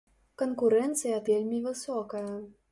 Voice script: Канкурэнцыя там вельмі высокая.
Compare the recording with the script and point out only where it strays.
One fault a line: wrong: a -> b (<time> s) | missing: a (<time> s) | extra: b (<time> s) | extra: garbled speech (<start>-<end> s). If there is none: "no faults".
missing: там (1.2 s)